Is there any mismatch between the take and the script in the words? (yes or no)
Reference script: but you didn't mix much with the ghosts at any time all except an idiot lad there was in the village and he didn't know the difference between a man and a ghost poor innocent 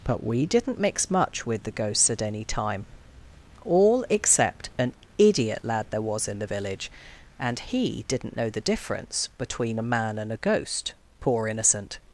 yes